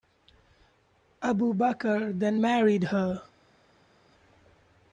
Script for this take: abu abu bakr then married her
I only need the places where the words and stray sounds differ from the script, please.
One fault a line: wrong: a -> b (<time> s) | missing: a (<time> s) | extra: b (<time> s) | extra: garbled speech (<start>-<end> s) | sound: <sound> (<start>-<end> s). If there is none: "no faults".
missing: abu (1.5 s)